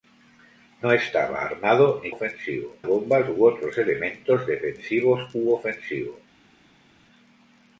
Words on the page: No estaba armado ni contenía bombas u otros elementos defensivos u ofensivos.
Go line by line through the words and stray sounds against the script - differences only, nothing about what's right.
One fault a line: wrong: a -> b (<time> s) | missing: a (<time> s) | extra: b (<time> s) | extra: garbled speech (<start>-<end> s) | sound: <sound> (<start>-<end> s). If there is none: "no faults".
wrong: contenía -> ofensivos (2.1 s)